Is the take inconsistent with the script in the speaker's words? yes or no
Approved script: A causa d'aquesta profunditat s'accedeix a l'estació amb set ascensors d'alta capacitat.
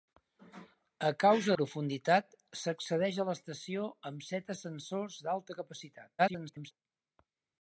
yes